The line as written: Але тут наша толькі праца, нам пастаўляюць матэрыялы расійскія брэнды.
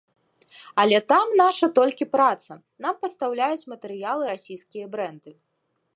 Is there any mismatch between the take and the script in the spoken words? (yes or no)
yes